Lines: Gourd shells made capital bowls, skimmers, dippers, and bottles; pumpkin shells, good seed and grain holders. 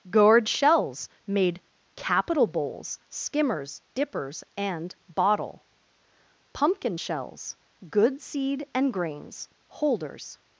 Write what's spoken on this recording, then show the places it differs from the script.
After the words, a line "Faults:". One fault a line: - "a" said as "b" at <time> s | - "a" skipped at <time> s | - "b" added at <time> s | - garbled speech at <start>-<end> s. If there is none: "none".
Gourd shells made capital bowls, skimmers, dippers, and bottle; pumpkin shells, good seed and grains holders.
Faults:
- "bottles" said as "bottle" at 5.1 s
- "grain" said as "grains" at 8.9 s